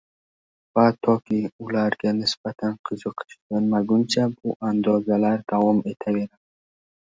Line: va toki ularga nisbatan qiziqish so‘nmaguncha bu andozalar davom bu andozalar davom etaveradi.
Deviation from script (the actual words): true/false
true